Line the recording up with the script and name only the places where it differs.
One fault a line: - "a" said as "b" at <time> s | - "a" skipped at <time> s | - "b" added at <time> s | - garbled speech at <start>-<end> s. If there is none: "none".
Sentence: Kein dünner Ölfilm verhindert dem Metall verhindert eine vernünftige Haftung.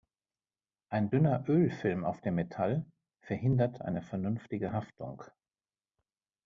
- "Kein" said as "Ein" at 0.9 s
- "verhindert" said as "auf" at 2.1 s